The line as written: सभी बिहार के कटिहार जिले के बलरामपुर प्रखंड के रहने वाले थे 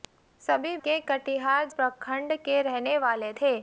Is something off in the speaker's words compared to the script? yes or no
yes